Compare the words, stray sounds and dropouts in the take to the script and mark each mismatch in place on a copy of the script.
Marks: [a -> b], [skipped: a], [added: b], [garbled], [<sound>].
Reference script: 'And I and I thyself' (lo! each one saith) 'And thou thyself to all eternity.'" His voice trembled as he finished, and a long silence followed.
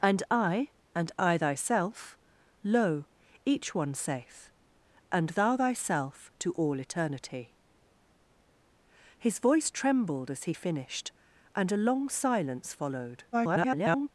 'And I and I thyself' (lo! each one saith) 'And thou thyself to all eternity.'" His voice trembled as he finished, and a long silence followed. [garbled]